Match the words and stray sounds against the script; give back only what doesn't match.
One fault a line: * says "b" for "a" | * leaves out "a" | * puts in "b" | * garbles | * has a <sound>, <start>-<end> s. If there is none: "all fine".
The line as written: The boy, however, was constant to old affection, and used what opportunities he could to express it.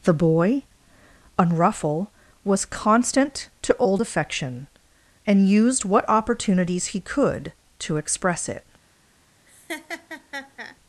* says "unruffle" for "however"
* has a laugh, 9.5-10.8 s